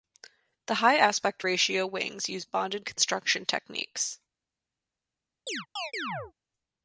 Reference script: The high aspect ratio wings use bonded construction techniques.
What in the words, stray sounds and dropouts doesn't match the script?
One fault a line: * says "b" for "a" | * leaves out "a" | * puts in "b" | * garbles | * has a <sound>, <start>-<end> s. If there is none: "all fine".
* has a chirp, 5.5-6.3 s